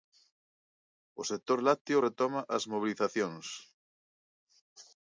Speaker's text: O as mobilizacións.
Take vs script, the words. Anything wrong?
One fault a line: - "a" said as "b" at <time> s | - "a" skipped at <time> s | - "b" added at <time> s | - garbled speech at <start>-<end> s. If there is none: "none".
- "sector lácteo retoma" added at 1.3 s